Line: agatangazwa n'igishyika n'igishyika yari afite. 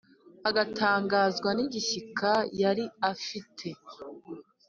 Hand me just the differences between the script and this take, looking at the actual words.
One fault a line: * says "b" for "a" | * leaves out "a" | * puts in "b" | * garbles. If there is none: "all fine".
* leaves out "n'igishyika"